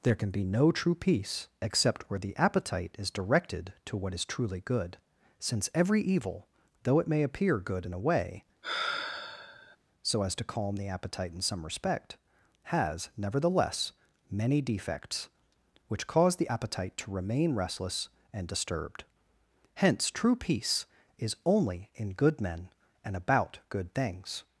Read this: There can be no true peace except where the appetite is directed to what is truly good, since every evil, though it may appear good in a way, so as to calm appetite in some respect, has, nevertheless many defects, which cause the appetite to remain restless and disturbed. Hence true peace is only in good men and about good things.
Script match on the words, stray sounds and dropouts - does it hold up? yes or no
no